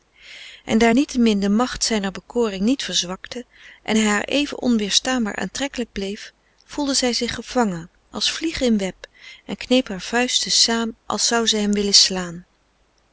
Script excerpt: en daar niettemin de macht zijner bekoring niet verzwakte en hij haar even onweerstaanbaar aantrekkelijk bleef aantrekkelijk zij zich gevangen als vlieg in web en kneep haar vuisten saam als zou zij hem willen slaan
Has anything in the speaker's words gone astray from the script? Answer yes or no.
yes